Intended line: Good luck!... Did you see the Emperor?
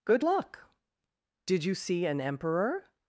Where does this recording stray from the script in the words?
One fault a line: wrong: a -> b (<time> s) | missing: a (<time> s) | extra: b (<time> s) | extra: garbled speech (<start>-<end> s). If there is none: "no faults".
wrong: the -> an (2.1 s)